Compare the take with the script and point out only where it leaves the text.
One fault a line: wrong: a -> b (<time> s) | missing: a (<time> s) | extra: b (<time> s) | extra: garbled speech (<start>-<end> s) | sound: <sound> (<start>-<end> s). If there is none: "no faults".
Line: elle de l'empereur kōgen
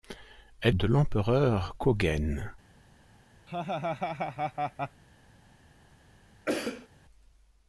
sound: laugh (3.5-5.0 s)
sound: cough (6.5-6.9 s)